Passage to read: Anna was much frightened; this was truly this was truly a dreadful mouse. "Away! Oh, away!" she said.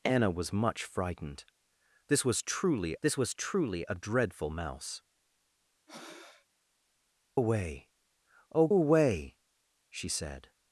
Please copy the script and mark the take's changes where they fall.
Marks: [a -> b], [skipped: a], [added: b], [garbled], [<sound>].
Anna was much frightened; this was truly this was truly a dreadful mouse. [breath] "Away! Oh, away!" she said.